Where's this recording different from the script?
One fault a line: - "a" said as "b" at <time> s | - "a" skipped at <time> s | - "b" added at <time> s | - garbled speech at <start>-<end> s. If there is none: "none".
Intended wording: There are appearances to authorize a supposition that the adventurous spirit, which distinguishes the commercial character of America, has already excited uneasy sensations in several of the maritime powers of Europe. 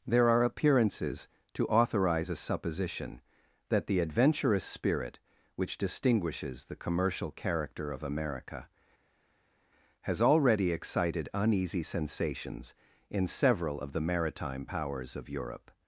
none